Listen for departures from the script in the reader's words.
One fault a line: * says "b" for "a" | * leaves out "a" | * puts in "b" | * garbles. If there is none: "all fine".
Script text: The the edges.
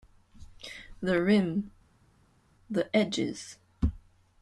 * puts in "rim"